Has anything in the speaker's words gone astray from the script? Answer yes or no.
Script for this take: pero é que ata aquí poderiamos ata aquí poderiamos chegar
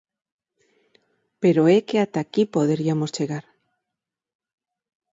yes